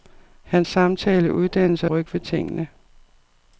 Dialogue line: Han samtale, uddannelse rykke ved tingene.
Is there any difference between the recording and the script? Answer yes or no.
no